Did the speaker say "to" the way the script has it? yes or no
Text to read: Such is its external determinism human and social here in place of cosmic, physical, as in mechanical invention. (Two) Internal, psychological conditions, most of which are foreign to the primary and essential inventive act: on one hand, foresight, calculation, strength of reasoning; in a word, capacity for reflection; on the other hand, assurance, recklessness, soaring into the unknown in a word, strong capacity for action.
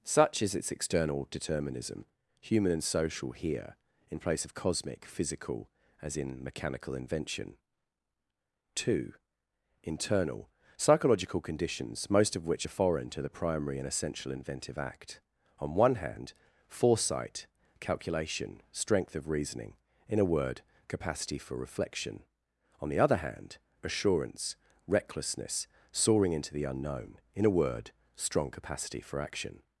yes